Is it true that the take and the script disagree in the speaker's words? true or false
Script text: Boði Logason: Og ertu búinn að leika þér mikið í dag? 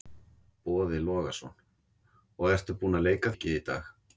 true